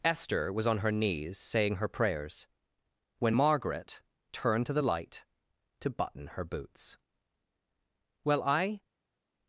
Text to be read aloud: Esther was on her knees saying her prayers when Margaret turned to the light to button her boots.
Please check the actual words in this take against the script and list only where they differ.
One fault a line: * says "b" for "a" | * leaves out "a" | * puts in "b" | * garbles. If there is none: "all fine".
* puts in "Well I"